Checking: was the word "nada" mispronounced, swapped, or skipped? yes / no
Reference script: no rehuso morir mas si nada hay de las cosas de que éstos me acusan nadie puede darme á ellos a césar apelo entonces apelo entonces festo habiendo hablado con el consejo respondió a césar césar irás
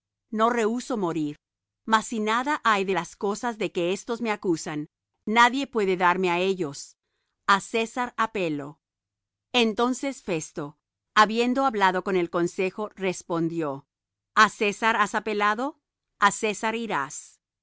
no